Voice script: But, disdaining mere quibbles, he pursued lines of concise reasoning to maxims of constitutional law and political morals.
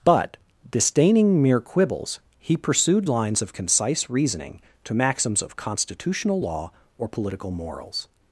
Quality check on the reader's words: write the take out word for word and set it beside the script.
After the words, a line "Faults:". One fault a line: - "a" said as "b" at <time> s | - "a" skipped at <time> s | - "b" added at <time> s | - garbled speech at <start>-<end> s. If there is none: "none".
But, disdaining mere quibbles, he pursued lines of concise reasoning to maxims of constitutional law or political morals.
Faults:
- "and" said as "or" at 7.0 s